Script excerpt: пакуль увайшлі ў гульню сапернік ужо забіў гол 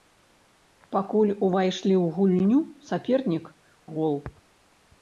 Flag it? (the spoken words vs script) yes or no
yes